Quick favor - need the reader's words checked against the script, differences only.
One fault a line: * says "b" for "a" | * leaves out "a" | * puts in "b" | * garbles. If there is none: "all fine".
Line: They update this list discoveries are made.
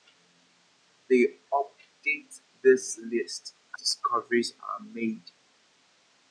all fine